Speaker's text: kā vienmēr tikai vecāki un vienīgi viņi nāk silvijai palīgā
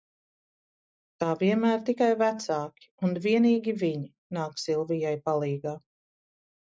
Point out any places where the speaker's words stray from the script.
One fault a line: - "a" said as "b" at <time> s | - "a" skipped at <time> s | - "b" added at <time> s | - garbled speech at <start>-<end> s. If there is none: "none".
none